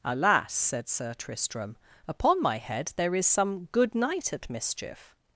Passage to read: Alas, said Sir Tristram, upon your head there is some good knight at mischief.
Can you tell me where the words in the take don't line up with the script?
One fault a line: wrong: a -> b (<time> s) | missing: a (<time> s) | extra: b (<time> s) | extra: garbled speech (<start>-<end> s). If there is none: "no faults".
wrong: your -> my (2.4 s)